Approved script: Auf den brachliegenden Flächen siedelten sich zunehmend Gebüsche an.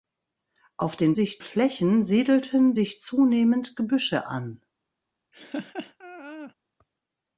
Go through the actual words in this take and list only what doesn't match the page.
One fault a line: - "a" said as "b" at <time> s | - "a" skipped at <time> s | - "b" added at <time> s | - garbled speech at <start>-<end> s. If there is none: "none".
- "brachliegenden" said as "sich" at 1.1 s